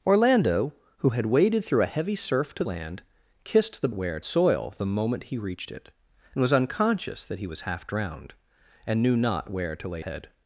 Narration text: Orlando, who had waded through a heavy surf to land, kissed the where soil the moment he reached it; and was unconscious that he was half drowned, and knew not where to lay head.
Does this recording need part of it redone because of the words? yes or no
no